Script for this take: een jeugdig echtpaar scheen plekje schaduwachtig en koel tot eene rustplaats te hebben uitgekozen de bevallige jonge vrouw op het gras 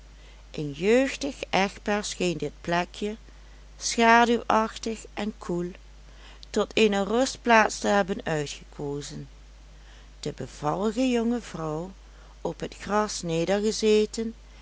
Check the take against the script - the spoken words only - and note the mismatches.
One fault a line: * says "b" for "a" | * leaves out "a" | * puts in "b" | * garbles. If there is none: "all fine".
* puts in "dit"